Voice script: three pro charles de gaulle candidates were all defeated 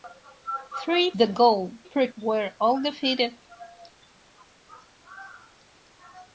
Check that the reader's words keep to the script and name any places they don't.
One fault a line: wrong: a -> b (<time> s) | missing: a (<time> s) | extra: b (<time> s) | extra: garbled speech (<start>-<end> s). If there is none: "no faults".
missing: pro charles (1.1 s)
wrong: candidates -> pro (1.8 s)